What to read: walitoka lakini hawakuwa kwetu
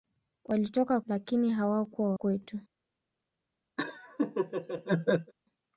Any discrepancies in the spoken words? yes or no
no